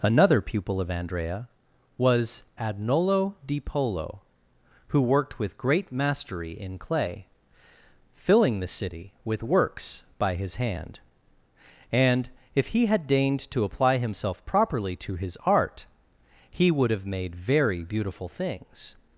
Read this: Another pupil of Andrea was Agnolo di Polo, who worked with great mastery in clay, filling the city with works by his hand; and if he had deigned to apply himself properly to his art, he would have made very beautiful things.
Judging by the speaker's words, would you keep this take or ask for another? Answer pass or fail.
pass